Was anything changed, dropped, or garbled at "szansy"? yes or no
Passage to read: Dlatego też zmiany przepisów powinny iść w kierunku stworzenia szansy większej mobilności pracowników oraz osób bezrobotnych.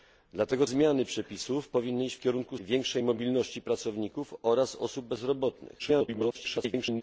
yes